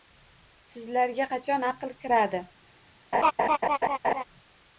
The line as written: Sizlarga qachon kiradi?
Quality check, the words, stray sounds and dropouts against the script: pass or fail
fail